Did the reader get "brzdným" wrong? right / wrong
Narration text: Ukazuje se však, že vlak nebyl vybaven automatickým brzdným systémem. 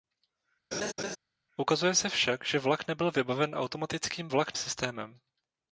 wrong